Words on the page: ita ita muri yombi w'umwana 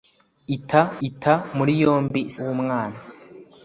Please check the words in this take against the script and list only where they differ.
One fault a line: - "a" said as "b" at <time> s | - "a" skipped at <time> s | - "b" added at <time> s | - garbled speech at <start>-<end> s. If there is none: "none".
none